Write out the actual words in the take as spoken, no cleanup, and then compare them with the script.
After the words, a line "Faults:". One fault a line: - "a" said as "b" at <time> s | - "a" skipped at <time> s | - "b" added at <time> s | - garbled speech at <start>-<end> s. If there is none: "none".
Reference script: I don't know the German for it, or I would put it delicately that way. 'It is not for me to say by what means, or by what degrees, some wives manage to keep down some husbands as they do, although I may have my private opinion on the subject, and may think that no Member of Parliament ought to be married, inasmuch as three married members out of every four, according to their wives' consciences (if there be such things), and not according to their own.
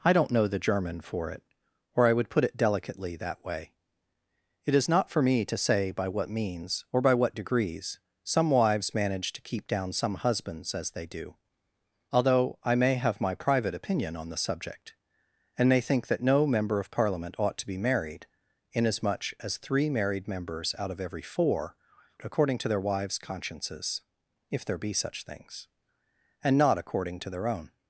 I don't know the German for it, or I would put it delicately that way. 'It is not for me to say by what means, or by what degrees, some wives manage to keep down some husbands as they do, although I may have my private opinion on the subject, and may think that no Member of Parliament ought to be married, inasmuch as three married members out of every four, according to their wives' consciences (if there be such things), and not according to their own.
Faults:
none